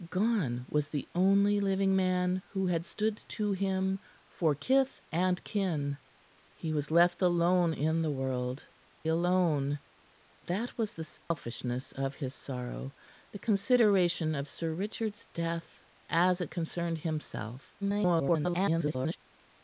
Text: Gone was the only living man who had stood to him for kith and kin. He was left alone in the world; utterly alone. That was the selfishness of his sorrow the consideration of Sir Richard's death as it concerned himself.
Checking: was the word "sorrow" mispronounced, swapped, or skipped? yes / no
no